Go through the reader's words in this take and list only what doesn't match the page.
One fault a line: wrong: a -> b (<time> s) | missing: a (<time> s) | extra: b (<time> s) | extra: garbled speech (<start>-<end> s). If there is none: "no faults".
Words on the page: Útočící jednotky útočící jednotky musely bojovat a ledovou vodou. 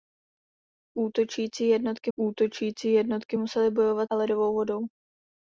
no faults